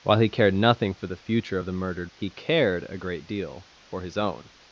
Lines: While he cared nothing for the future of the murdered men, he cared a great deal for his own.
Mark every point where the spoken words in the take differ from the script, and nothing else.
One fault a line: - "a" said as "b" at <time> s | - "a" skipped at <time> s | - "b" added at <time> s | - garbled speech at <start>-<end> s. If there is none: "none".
- "men" skipped at 2.1 s